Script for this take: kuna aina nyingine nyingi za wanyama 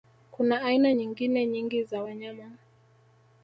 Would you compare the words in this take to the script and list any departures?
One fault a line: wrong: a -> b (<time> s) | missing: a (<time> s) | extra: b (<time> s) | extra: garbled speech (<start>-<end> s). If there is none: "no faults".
no faults